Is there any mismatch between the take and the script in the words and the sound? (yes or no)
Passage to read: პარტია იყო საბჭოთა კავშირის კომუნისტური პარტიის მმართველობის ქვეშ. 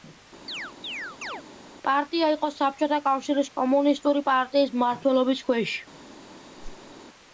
yes